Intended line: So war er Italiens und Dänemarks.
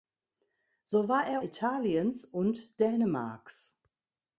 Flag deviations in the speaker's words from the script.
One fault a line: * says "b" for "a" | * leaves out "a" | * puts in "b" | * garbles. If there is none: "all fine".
all fine